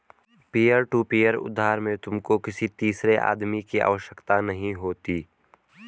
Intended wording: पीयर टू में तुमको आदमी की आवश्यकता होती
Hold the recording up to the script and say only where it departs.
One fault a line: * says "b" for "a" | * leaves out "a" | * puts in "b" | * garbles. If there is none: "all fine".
* puts in "पीयर उधार"
* puts in "किसी तीसरे"
* puts in "नहीं"